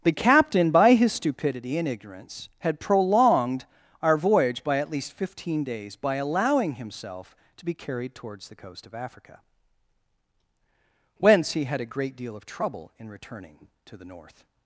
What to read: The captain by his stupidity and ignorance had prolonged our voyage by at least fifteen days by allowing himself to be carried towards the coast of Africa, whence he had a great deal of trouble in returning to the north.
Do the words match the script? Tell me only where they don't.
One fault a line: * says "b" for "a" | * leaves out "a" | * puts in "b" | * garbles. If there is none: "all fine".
all fine